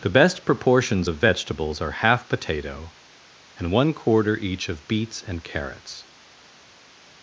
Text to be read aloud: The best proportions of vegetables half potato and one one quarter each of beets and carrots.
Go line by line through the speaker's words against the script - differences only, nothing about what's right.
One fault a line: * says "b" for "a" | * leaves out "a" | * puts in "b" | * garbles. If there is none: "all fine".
* puts in "are"
* leaves out "one"